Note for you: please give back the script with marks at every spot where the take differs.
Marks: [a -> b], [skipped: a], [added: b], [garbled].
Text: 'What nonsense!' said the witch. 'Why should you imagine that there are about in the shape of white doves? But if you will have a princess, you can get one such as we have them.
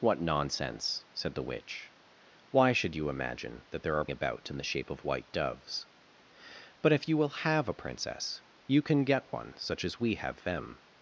'What nonsense!' said the witch. 'Why should you imagine that there are about in the shape of white doves? But if you will have a princess, you can get one such as we have them.